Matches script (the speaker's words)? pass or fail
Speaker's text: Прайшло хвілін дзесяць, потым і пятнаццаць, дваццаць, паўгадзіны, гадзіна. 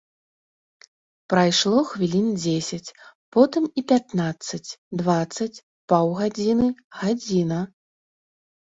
pass